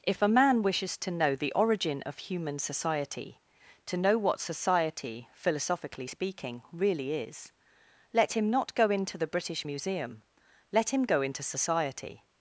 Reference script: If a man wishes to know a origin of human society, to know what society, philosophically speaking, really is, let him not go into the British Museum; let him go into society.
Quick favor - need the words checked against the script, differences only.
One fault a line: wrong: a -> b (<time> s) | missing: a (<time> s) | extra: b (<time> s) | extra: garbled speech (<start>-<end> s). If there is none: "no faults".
wrong: a -> the (1.4 s)